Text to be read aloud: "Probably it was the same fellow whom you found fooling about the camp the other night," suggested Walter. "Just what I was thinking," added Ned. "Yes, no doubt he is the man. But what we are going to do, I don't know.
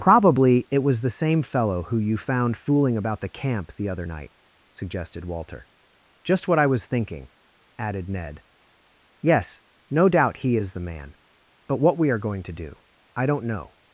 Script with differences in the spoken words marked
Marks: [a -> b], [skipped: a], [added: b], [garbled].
"Probably it was the same fellow [whom -> who] you found fooling about the camp the other night," suggested Walter. "Just what I was thinking," added Ned. "Yes, no doubt he is the man. But what we are going to do, I don't know.